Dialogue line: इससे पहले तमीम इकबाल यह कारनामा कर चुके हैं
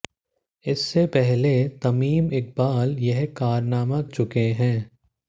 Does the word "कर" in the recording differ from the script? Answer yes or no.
yes